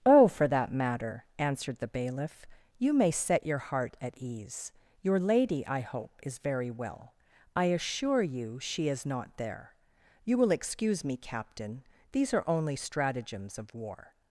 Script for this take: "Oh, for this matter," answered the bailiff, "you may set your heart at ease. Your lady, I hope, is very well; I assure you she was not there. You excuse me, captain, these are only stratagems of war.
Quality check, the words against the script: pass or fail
fail